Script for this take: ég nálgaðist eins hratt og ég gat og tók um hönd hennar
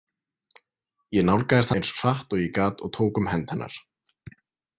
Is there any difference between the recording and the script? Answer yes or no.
no